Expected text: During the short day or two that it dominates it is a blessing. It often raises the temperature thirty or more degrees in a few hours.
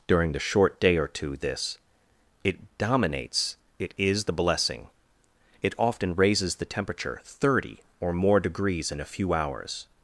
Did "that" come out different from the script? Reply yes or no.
yes